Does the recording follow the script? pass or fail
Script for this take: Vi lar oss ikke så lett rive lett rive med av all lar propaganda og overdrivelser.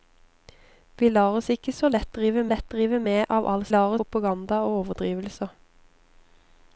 pass